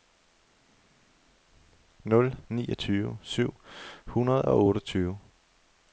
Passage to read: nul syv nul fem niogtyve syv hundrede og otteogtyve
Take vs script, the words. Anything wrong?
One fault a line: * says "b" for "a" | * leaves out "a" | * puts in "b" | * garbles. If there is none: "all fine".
* leaves out "syv nul fem"